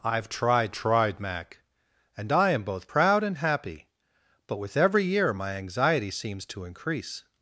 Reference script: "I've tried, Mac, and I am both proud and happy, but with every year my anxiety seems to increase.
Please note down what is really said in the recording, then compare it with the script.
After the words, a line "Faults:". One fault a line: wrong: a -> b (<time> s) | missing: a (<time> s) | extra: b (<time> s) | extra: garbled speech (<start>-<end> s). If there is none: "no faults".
"I've tried tried, Mac, and I am both proud and happy, but with every year my anxiety seems to increase.
Faults:
extra: tried (0.7 s)